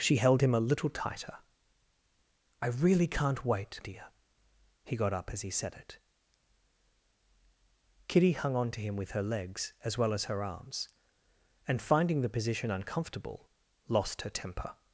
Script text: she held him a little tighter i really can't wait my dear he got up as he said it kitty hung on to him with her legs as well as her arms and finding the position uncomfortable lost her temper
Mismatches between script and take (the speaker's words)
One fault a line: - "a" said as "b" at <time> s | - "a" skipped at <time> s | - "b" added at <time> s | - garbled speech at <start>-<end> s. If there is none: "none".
- "my" skipped at 3.8 s